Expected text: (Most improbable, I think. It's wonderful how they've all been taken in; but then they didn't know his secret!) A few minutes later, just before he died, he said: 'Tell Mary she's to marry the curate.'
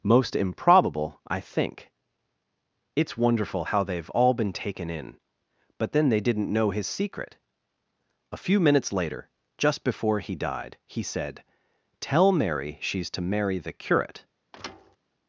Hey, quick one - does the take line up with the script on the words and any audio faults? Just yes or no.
no